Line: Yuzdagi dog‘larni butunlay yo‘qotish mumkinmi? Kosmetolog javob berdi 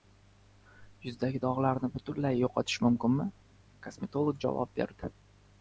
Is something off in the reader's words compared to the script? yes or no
no